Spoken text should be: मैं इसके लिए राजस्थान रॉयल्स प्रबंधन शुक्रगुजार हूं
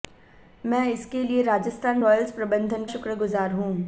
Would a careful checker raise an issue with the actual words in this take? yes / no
no